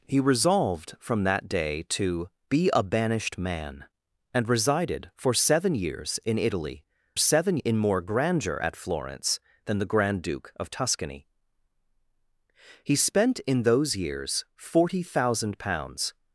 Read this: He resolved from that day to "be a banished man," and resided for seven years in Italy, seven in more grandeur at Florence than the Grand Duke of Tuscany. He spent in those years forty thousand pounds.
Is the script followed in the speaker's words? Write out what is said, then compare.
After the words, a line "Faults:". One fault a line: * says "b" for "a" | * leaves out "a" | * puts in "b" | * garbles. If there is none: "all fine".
He resolved from that day to "be a banished man," and resided for seven years in Italy, seven in more grandeur at Florence than the Grand Duke of Tuscany. He spent in those years forty thousand pounds.
Faults:
all fine